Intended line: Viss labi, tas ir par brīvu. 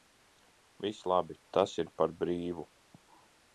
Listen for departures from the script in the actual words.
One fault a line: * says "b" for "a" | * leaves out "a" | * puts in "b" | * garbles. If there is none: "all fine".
all fine